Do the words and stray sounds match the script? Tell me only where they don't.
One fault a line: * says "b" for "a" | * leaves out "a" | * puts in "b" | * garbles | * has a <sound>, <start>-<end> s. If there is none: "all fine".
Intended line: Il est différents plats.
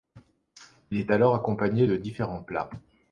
* puts in "alors accompagné de"